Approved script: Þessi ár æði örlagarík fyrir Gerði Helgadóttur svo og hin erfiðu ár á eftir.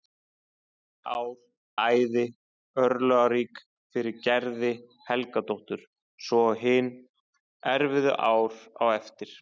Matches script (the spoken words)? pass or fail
pass